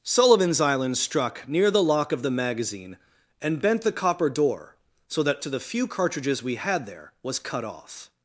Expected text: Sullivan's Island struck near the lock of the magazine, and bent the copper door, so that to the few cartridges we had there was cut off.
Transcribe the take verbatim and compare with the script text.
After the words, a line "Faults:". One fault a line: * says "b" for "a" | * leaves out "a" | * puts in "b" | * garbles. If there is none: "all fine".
Sullivan's Island struck near the lock of the magazine, and bent the copper door, so that to the few cartridges we had there was cut off.
Faults:
all fine